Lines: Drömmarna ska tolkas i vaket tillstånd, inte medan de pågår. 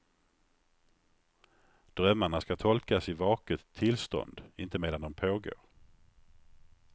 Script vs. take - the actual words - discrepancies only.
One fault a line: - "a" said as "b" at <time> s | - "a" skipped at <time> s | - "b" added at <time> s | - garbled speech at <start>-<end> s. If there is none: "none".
none